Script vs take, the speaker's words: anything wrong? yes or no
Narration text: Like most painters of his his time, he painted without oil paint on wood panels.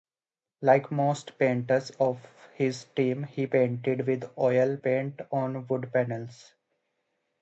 yes